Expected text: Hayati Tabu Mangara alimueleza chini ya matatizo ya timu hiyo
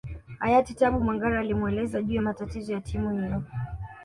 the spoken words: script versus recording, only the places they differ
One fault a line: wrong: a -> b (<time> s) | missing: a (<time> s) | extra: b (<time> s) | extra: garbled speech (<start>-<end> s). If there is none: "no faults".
wrong: chini -> juu (2.0 s)